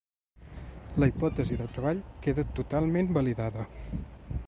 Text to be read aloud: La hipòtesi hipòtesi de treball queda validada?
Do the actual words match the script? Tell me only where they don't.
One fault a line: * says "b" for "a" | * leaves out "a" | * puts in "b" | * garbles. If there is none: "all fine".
* leaves out "hipòtesi"
* puts in "totalment"